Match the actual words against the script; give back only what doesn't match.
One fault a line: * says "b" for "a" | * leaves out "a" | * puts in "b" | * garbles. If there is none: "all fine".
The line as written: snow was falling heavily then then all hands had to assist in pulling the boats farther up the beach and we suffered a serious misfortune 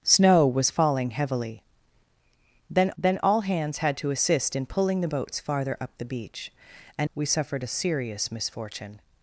all fine